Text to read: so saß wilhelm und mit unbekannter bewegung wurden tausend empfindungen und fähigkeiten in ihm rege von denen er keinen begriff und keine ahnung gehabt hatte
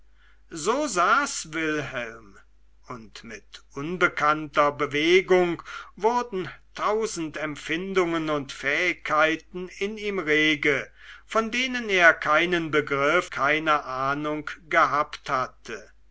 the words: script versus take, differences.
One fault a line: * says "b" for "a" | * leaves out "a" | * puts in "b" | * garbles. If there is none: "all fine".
* leaves out "und"